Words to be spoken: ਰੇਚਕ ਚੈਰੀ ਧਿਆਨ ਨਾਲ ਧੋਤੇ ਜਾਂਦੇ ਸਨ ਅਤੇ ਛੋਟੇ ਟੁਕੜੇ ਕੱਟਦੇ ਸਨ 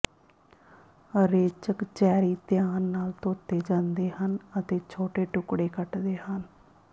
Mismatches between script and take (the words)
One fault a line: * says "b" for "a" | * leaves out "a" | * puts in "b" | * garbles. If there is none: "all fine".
* says "ਹਨ" for "ਸਨ"
* says "ਹਨ" for "ਸਨ"